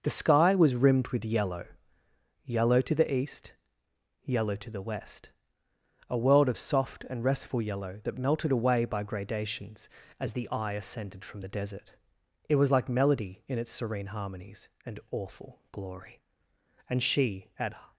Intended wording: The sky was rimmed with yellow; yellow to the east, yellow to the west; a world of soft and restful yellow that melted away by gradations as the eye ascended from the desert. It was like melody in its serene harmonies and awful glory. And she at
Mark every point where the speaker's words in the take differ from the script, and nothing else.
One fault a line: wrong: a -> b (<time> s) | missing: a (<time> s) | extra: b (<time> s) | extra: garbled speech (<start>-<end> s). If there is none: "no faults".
no faults